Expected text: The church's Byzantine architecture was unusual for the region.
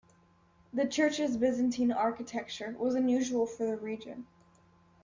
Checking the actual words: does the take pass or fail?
pass